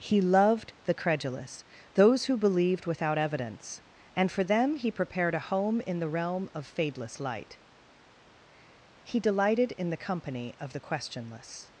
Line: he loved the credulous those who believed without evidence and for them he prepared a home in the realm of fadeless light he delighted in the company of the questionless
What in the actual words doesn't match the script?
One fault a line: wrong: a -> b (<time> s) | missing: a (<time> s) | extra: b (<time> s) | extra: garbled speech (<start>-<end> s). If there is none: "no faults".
no faults